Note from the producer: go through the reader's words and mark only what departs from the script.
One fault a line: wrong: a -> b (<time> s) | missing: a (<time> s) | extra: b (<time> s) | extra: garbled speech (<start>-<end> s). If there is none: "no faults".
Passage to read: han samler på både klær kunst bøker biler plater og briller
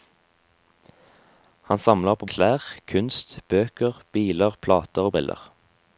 missing: både (2.3 s)